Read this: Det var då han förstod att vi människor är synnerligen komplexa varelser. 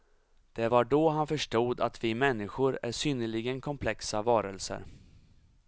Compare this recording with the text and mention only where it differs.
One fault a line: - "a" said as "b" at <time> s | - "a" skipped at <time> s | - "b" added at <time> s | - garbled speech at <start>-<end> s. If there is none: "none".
none